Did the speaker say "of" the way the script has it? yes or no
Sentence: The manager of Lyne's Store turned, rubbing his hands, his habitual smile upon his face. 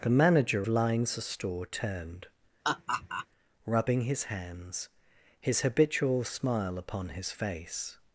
no